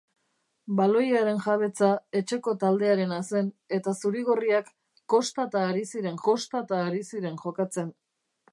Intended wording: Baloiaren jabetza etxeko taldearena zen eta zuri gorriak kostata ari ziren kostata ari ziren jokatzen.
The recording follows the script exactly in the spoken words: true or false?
true